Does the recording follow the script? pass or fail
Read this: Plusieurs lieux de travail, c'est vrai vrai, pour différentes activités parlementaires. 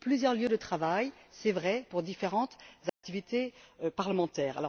fail